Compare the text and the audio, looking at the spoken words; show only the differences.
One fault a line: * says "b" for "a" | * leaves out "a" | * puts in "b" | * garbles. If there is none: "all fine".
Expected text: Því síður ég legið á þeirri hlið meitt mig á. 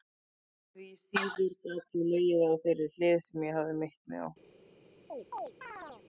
* puts in "gat"
* puts in "sem ég hafði"